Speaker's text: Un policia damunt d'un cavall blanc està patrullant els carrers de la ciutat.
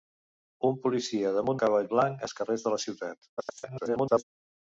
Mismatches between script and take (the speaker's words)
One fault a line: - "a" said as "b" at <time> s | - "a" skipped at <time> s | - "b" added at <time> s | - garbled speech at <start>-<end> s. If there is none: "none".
- "d'un" skipped at 1.6 s
- "està patrullant" skipped at 2.3 s
- garbled speech at 3.4-4.2 s